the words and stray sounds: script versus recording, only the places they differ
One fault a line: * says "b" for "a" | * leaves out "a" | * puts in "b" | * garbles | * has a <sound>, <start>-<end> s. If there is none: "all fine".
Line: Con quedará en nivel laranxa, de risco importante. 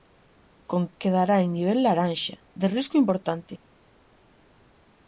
all fine